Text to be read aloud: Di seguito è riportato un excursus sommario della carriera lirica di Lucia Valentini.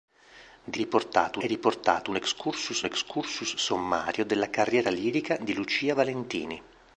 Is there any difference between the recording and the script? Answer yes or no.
yes